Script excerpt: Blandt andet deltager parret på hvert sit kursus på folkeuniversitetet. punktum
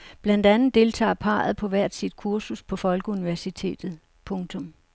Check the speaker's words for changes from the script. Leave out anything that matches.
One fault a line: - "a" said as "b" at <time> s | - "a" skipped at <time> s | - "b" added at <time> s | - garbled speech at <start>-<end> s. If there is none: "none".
none